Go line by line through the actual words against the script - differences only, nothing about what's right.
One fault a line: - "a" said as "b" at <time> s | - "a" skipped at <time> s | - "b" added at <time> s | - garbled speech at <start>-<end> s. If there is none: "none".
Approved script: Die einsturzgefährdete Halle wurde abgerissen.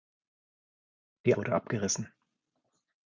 - "einsturzgefährdete Halle" skipped at 1.4 s